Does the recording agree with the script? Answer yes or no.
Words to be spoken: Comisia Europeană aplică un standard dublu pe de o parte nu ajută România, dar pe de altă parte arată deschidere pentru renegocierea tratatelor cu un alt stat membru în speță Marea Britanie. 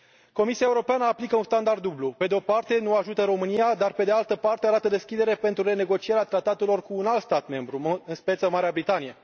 yes